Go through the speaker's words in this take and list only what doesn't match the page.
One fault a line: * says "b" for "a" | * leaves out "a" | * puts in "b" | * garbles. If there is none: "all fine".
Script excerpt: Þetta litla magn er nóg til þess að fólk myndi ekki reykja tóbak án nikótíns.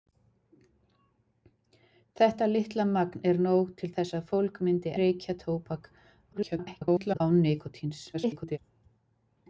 * leaves out "ekki"
* garbles
* garbles